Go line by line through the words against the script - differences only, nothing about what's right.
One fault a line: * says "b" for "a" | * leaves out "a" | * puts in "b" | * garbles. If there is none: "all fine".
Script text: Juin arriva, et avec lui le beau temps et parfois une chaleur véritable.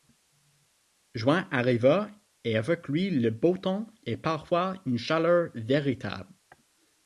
all fine